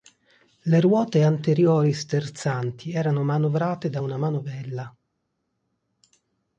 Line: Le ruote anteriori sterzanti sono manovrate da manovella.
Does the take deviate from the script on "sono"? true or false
true